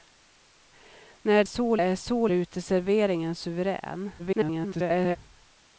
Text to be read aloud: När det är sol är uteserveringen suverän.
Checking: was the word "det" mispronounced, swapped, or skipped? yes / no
yes